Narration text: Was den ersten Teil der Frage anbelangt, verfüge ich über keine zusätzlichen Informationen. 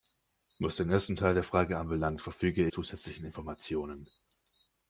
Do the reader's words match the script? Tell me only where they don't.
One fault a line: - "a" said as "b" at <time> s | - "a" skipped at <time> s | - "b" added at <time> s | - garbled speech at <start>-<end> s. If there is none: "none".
- "ich über keine" skipped at 2.7 s